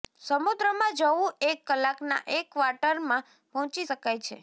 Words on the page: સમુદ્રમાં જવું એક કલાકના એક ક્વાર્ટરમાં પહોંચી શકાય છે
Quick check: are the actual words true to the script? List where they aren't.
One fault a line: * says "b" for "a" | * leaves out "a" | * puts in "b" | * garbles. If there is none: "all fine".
all fine